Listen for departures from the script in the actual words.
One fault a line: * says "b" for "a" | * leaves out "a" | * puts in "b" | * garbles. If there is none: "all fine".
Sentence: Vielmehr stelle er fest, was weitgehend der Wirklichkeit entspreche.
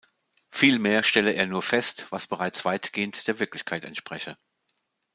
* puts in "nur"
* puts in "bereits"